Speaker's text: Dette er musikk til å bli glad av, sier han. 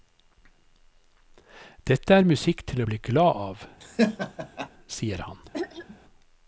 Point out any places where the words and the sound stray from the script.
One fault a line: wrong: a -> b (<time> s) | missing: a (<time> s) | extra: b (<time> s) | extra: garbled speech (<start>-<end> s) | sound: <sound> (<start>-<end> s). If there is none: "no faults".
sound: laugh (3.8-4.7 s)
sound: throat clearing (5.5-6.0 s)